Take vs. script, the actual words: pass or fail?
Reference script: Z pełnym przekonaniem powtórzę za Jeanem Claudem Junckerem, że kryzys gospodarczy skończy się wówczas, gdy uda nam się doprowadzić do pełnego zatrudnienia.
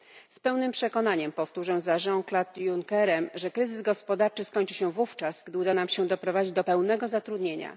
pass